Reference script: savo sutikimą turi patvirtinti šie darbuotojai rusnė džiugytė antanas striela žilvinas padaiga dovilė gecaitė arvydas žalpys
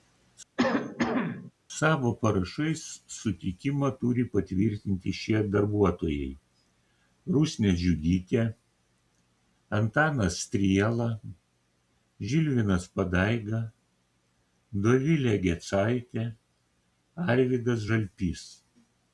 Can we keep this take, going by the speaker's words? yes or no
no